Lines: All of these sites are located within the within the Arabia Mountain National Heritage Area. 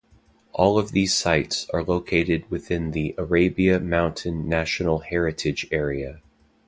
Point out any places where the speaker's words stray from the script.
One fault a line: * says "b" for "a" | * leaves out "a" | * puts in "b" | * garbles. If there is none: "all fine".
* leaves out "within the"